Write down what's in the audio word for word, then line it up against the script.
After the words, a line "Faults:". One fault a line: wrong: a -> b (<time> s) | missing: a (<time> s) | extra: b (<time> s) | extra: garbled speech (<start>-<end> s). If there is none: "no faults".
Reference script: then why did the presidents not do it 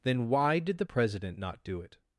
then why did the president not do it
Faults:
wrong: presidents -> president (0.8 s)